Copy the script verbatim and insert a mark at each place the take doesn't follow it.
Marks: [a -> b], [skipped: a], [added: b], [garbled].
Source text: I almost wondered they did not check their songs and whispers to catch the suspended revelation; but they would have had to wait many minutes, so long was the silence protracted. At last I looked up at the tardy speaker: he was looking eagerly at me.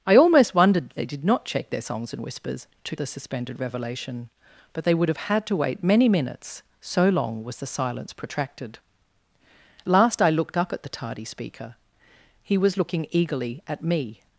I almost wondered they did not check their songs and whispers to [skipped: catch] the suspended revelation; but they would have had to wait many minutes, so long was the silence protracted. [skipped: At] last I looked up at the tardy speaker: he was looking eagerly at me.